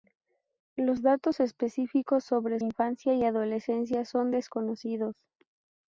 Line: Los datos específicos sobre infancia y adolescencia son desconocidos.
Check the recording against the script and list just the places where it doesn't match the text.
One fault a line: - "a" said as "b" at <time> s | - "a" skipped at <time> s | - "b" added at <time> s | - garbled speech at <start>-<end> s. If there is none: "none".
none